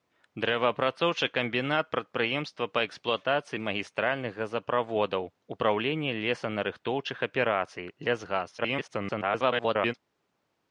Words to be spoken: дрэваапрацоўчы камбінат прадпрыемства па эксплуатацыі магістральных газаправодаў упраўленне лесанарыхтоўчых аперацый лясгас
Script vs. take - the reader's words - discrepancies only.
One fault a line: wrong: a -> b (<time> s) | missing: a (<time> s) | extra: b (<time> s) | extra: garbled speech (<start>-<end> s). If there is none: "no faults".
extra: garbled speech (8.6-9.9 s)